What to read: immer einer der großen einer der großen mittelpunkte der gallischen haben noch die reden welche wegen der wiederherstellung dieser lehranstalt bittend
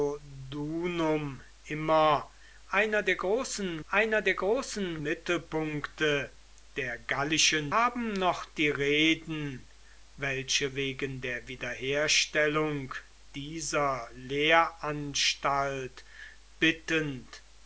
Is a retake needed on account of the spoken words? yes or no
no